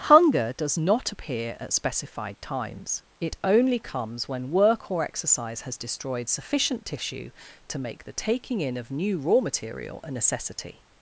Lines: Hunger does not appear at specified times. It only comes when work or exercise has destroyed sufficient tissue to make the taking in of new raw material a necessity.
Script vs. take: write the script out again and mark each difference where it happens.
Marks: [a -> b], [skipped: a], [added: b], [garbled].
Hunger does not appear at specified times. It only comes when work or exercise has destroyed sufficient tissue to make the taking in of new raw material a necessity.